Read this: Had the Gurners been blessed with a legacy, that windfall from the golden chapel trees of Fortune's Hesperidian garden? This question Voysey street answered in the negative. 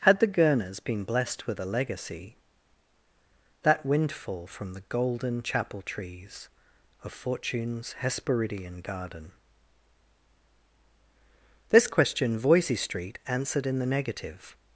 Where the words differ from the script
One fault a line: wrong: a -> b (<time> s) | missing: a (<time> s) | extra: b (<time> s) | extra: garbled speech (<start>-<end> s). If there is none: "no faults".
no faults